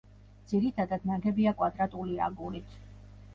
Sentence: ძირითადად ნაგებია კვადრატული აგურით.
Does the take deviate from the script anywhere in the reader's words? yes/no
no